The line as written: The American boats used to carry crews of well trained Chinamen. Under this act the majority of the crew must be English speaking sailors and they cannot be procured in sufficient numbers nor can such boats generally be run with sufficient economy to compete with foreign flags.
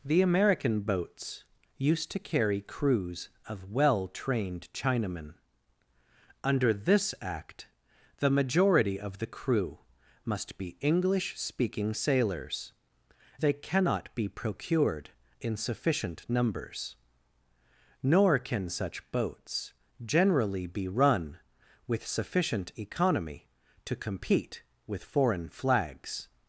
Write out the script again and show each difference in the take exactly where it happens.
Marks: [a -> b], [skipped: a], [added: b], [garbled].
The American boats used to carry crews of well trained Chinamen. Under this act the majority of the crew must be English speaking sailors [skipped: and] they cannot be procured in sufficient numbers nor can such boats generally be run with sufficient economy to compete with foreign flags.